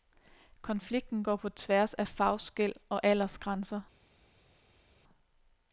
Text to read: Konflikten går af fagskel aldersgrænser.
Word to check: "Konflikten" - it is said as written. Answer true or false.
true